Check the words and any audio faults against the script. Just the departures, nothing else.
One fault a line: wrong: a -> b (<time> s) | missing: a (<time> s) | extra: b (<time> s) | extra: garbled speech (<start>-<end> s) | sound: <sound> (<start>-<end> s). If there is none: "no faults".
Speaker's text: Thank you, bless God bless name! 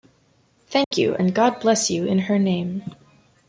sound: dropout (0.8-0.9 s)
wrong: bless -> and (1.2 s)
extra: you in her (1.9 s)